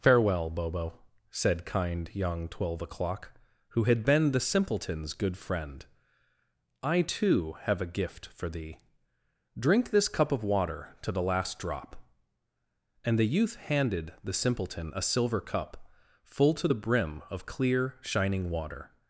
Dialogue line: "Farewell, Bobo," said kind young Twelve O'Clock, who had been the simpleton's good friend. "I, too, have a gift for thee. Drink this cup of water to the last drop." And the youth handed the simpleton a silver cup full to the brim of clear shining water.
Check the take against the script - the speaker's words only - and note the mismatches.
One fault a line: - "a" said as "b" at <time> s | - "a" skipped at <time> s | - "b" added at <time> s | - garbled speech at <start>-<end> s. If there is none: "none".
none